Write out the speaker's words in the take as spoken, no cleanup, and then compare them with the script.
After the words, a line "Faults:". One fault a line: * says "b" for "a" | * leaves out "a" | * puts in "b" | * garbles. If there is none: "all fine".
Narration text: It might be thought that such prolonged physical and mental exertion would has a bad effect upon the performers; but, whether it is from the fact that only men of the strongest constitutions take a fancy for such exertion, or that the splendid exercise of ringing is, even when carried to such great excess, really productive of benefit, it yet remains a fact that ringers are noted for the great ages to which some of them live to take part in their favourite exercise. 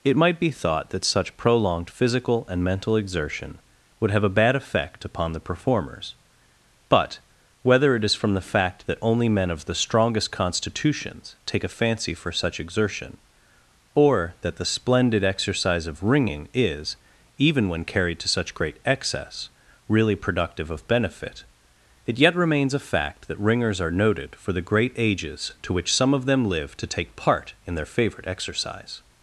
It might be thought that such prolonged physical and mental exertion would have a bad effect upon the performers; but, whether it is from the fact that only men of the strongest constitutions take a fancy for such exertion, or that the splendid exercise of ringing is, even when carried to such great excess, really productive of benefit, it yet remains a fact that ringers are noted for the great ages to which some of them live to take part in their favourite exercise.
Faults:
* says "have" for "has"